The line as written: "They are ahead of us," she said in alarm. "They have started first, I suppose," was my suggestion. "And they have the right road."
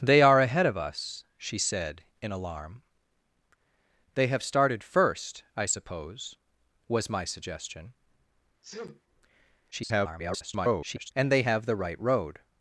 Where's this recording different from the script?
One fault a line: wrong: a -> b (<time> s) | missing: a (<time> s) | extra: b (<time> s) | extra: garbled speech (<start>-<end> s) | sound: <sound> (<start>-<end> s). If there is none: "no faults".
sound: sneeze (8.6-9.0 s)
extra: garbled speech (9.7-11.1 s)